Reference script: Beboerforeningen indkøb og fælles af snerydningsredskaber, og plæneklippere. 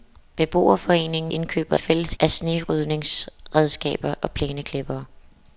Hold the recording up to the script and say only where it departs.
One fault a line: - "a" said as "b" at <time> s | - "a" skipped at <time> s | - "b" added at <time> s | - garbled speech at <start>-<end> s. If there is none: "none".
none